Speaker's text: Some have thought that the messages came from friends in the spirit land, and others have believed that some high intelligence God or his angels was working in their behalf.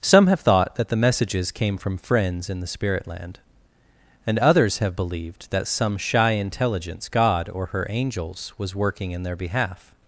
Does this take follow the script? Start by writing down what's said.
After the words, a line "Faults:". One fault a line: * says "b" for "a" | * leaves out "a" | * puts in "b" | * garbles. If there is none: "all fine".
Some have thought that the messages came from friends in the spirit land, and others have believed that some shy intelligence God or her angels was working in their behalf.
Faults:
* says "shy" for "high"
* says "her" for "his"